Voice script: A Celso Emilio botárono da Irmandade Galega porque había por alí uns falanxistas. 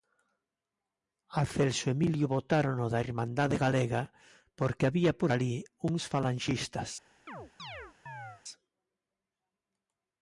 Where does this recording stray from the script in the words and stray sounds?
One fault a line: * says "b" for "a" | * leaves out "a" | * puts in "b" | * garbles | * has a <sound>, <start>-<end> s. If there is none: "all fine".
* has a chirp, 7.3-8.4 s